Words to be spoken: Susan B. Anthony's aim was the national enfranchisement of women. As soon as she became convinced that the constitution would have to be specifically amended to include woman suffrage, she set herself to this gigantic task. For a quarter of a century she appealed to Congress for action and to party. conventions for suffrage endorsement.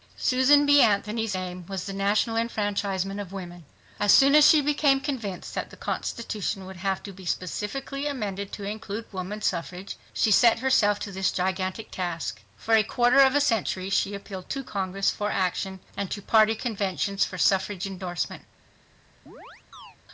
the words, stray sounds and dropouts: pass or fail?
fail